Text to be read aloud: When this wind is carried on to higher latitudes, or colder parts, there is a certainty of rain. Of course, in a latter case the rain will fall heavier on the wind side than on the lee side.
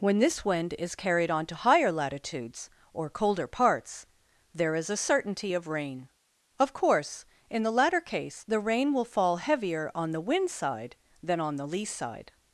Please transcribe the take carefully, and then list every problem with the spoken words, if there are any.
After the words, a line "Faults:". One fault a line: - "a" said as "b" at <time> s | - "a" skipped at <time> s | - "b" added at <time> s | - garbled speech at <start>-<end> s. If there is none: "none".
When this wind is carried on to higher latitudes, or colder parts, there is a certainty of rain. Of course, in the latter case the rain will fall heavier on the wind side than on the lee side.
Faults:
- "a" said as "the" at 7.6 s